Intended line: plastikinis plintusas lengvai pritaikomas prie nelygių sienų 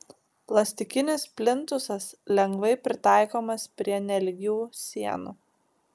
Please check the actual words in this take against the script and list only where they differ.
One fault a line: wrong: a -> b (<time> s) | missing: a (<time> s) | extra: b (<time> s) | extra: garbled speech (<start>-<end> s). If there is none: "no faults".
no faults